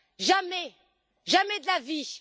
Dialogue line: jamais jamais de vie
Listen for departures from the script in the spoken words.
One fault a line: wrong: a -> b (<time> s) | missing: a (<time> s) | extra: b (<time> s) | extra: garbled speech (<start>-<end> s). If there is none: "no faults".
extra: la (1.7 s)